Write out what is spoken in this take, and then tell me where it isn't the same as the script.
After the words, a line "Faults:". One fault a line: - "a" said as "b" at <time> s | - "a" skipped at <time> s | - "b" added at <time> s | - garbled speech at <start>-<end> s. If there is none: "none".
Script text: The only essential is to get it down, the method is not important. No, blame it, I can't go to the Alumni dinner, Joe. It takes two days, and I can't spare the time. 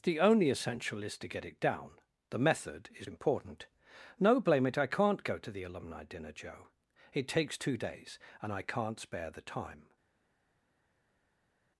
The only essential is to get it down, the method is important. No, blame it, I can't go to the Alumni dinner, Joe. It takes two days, and I can't spare the time.
Faults:
- "not" skipped at 3.1 s